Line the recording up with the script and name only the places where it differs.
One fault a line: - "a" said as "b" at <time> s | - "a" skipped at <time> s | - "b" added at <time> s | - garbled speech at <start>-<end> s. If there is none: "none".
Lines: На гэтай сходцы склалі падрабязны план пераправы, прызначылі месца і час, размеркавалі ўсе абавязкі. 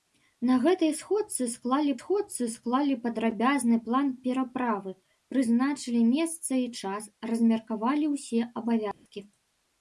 - "сходцы склалі" added at 2.0 s